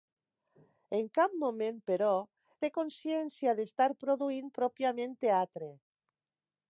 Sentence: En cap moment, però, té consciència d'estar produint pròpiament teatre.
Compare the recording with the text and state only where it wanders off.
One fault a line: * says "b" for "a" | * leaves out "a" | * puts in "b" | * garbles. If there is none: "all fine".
all fine